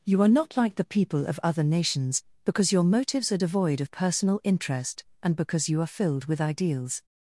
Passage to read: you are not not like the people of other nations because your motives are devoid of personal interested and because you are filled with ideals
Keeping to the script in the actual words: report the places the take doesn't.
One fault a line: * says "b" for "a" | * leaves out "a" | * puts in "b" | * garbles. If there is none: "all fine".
* leaves out "not"
* says "interest" for "interested"